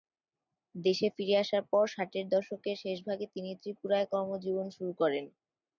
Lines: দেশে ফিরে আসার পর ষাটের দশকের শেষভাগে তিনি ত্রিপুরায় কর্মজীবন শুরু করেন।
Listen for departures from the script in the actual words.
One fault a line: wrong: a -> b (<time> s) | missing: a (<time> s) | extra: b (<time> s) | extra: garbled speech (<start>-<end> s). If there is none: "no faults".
no faults